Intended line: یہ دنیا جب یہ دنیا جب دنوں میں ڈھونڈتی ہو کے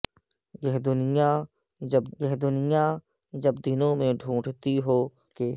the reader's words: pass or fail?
pass